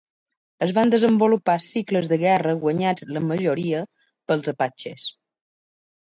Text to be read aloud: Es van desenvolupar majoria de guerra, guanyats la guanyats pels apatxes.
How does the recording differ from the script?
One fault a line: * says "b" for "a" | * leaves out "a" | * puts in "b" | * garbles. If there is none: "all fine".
* says "cicles" for "majoria"
* says "majoria" for "guanyats"